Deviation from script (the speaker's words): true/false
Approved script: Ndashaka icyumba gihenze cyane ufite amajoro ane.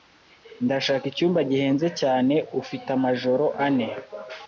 false